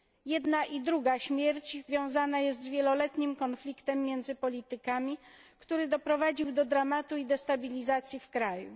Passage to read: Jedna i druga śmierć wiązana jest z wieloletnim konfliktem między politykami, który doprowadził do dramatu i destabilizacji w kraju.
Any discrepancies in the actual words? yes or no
no